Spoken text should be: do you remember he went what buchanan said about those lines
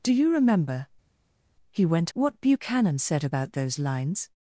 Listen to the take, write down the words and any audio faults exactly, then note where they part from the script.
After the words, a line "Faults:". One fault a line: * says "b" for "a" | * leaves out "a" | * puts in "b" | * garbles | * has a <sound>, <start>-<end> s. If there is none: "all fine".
do you remember he went what buchanan said about those lines
Faults:
all fine